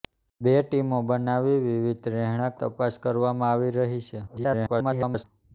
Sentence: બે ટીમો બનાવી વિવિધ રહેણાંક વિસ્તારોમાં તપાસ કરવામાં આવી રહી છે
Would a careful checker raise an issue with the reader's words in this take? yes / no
yes